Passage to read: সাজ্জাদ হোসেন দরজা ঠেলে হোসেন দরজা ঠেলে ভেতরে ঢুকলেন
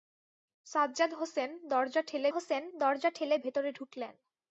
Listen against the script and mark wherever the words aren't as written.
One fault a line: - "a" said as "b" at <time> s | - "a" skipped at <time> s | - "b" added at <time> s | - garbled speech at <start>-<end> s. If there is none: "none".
none